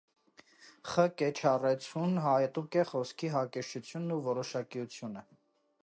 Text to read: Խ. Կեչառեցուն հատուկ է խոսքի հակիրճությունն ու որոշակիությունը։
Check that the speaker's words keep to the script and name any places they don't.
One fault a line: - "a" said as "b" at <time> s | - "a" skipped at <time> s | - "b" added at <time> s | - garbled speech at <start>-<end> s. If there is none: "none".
none